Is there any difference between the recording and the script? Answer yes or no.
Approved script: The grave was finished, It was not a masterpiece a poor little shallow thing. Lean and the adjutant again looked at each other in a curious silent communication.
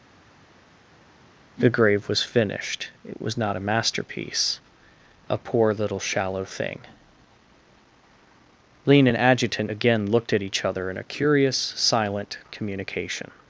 yes